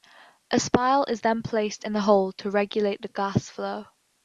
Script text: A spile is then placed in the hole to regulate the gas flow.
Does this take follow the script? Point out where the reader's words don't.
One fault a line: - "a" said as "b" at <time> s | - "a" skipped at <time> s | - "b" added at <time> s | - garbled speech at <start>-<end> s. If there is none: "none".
none